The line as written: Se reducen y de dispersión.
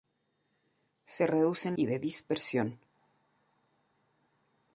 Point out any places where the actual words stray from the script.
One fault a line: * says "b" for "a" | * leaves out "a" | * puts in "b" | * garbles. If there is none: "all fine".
all fine